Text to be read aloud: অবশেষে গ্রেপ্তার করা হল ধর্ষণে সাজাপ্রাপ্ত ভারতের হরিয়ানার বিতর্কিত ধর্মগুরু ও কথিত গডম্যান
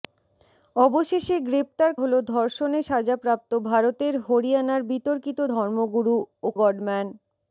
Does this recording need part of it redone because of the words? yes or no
yes